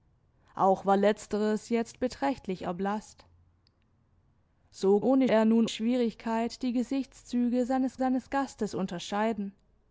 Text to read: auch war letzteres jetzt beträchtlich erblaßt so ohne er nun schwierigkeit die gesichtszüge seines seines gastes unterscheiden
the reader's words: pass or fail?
pass